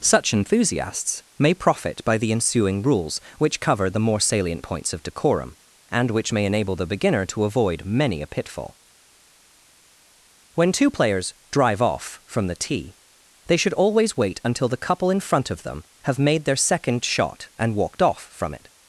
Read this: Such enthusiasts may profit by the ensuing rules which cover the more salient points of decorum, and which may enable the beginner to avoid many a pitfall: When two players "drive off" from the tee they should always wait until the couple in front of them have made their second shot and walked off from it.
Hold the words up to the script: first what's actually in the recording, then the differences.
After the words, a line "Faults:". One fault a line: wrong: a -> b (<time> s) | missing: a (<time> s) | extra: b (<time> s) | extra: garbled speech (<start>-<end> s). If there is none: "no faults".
Such enthusiasts may profit by the ensuing rules which cover the more salient points of decorum, and which may enable the beginner to avoid many a pitfall: When two players "drive off" from the tee they should always wait until the couple in front of them have made their second shot and walked off from it.
Faults:
no faults